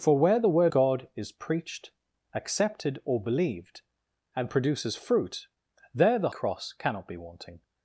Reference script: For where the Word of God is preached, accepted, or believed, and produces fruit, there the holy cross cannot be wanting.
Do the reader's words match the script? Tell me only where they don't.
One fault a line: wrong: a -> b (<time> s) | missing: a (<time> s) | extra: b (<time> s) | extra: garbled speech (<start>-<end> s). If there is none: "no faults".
missing: of (0.7 s)
missing: holy (6.3 s)